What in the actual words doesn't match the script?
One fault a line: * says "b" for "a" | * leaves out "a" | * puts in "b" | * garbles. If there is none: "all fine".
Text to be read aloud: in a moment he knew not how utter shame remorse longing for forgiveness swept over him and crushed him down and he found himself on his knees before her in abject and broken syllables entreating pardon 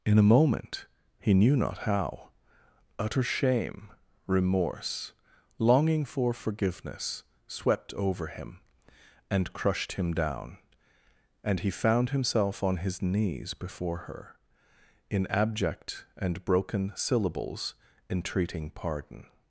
all fine